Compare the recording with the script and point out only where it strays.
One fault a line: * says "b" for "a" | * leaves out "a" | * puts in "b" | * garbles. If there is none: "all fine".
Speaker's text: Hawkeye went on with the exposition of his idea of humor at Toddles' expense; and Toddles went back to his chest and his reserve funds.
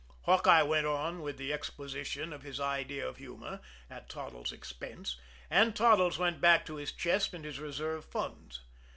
all fine